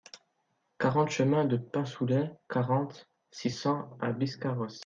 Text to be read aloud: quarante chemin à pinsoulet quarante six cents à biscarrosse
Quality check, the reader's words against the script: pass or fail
fail